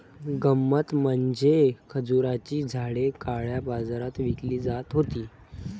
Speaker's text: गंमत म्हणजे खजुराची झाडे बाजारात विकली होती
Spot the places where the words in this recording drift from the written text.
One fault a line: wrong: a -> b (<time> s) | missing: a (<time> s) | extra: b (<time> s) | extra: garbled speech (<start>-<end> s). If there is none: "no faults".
extra: काळ्या (3.2 s)
extra: जात (4.6 s)